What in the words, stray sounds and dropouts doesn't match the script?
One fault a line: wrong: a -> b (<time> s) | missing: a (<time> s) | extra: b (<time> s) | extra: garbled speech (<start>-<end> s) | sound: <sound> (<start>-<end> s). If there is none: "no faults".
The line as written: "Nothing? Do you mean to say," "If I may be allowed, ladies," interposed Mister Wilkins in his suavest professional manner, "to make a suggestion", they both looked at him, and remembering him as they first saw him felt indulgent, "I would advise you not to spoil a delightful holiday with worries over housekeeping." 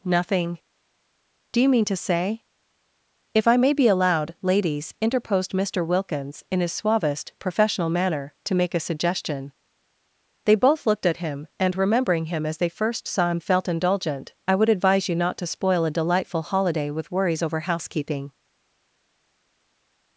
no faults